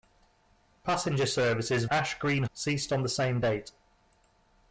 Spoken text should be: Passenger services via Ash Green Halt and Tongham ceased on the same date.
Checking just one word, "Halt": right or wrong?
wrong